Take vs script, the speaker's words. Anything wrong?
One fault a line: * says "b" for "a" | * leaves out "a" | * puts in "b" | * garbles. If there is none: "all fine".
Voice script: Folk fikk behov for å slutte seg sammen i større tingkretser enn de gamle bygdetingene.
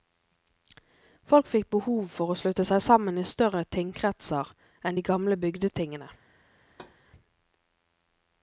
all fine